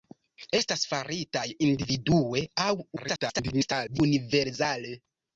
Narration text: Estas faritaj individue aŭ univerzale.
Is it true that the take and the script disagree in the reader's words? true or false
true